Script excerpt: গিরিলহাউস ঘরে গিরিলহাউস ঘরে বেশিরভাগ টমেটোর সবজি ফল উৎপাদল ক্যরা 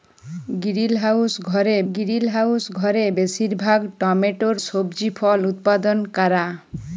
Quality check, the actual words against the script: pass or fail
pass